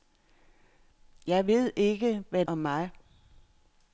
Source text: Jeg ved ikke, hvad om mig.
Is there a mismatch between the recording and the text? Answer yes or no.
no